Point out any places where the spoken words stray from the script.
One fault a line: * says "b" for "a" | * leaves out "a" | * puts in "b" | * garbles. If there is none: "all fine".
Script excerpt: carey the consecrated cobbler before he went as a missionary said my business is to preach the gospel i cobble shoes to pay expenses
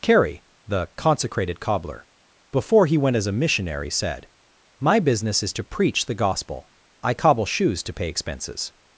all fine